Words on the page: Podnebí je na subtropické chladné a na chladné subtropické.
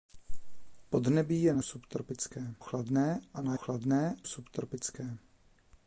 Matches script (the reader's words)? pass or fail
pass